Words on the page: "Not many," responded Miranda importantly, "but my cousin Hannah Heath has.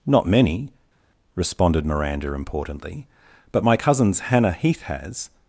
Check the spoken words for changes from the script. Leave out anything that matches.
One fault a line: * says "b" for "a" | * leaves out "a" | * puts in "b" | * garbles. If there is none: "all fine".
* says "cousins" for "cousin"